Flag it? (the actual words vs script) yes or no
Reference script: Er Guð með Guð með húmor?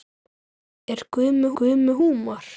no